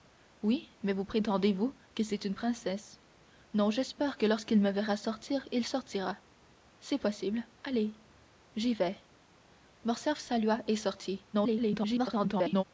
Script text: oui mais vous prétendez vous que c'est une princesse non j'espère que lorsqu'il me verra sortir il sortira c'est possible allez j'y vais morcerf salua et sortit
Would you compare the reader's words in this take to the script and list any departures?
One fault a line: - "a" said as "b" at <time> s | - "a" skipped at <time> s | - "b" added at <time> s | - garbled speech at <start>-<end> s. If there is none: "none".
- garbled speech at 11.3-12.6 s